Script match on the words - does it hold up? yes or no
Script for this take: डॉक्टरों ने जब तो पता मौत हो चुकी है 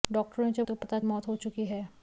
yes